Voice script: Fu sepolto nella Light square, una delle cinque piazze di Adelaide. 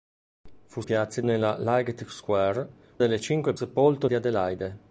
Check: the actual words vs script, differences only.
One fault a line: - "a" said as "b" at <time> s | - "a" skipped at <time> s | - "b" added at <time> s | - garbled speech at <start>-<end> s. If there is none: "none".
- "sepolto" said as "piazze" at 0.8 s
- "una" skipped at 2.7 s
- "piazze" said as "sepolto" at 3.5 s